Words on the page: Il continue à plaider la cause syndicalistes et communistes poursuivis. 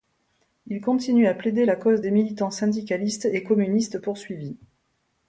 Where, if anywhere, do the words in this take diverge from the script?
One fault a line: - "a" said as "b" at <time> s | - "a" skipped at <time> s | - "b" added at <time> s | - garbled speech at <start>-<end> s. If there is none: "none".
- "des militants" added at 2.0 s